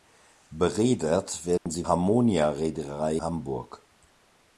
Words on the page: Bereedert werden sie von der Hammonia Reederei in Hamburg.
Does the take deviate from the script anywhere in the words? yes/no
yes